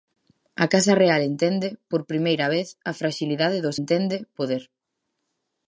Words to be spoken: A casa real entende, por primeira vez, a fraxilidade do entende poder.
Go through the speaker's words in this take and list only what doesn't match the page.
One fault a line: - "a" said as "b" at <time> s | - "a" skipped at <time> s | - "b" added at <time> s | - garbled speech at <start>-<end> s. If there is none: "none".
none